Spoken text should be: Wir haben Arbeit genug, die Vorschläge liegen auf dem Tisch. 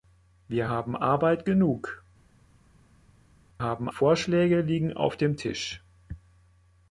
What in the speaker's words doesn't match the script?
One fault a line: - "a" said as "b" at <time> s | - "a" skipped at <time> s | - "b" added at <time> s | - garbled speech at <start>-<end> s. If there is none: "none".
- "die" said as "haben" at 3.6 s